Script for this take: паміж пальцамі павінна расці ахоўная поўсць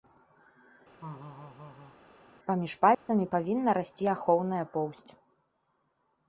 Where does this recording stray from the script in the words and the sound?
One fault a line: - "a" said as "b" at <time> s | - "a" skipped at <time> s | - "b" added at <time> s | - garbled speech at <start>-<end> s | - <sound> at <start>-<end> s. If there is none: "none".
- laugh at 1.0-2.0 s
- dropout at 2.9-3.1 s